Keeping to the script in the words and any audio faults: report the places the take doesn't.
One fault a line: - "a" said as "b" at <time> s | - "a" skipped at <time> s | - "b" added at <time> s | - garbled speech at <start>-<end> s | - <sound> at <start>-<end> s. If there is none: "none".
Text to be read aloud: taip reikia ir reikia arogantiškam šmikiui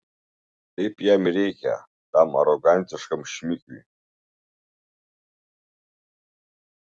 - "reikia" said as "jam" at 1.1 s
- "tam" added at 2.1 s